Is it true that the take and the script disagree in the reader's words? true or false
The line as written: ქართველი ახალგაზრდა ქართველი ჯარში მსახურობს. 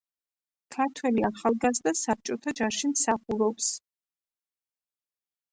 true